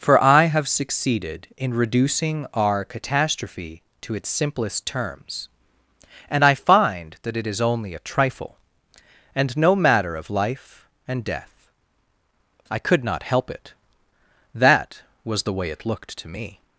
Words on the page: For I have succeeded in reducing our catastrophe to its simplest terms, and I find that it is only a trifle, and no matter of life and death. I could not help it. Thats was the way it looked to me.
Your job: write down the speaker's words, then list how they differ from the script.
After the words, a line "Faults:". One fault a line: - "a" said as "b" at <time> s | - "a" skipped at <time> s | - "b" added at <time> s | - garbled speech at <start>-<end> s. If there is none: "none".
For I have succeeded in reducing our catastrophe to its simplest terms, and I find that it is only a trifle, and no matter of life and death. I could not help it. That was the way it looked to me.
Faults:
- "Thats" said as "That" at 14.6 s